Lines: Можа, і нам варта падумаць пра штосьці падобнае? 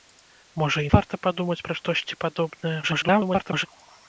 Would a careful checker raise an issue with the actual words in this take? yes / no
yes